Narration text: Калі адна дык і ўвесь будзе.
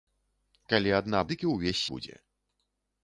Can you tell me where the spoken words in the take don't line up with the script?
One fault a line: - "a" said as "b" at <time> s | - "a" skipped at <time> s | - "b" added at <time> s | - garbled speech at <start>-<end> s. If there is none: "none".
none